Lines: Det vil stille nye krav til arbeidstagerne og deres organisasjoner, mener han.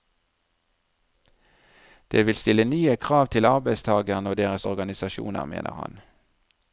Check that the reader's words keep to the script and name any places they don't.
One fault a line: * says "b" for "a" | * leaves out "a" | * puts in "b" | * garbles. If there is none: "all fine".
all fine